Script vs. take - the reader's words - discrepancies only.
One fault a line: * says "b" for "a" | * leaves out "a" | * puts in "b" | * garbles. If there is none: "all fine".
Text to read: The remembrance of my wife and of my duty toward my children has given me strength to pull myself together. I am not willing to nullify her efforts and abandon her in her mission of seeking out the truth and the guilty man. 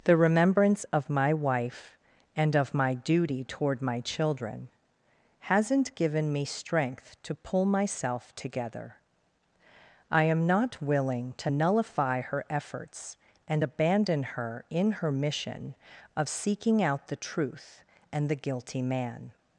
* says "hasn't" for "has"